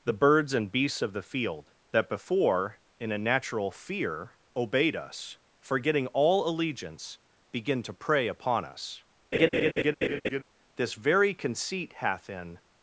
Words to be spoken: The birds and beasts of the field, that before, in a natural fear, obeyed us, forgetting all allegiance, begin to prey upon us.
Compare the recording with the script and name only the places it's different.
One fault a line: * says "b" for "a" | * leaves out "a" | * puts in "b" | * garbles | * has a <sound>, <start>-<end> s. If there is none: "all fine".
* has a laugh, 9.3-10.4 s
* puts in "This very conceit hath in"